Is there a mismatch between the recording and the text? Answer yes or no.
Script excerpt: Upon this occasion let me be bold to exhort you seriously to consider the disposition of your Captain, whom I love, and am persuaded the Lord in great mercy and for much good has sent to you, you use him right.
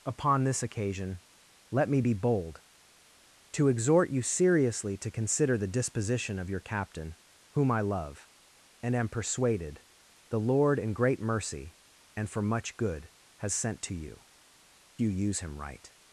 no